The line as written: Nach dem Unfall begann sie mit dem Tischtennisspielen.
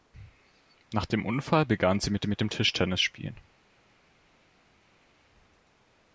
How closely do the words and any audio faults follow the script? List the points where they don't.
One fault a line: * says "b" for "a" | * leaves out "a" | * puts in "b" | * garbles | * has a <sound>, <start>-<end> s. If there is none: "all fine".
* puts in "mit"